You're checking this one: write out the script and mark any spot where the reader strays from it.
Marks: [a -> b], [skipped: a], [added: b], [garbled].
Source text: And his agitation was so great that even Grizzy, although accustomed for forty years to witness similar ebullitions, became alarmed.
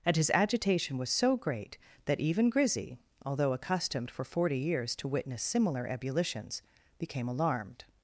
And his agitation was so great that even Grizzy, although accustomed for forty years to witness similar ebullitions, became alarmed.